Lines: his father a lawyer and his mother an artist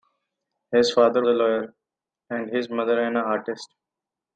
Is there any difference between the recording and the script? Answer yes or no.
no